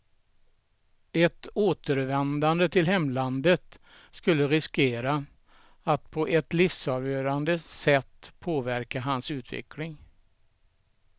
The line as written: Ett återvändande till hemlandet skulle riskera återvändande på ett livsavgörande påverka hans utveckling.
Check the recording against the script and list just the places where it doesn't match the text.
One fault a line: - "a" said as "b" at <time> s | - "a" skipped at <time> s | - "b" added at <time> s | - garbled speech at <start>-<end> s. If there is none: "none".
- "återvändande" said as "att" at 5.8 s
- "sätt" added at 7.6 s